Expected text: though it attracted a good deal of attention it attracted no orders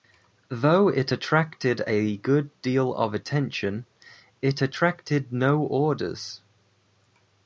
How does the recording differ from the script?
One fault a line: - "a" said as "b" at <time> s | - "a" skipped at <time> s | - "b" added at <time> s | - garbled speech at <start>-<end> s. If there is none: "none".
none